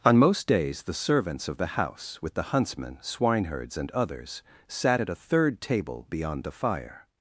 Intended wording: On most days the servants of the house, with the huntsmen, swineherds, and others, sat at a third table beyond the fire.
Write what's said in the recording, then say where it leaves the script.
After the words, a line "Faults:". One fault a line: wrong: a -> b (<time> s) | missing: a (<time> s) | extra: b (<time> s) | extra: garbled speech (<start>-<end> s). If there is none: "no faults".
On most days the servants of the house, with the huntsmen, swineherds, and others, sat at a third table beyond the fire.
Faults:
no faults